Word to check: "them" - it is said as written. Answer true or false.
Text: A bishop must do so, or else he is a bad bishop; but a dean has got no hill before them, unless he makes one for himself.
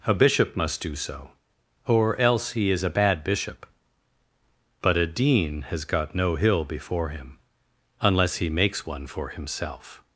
false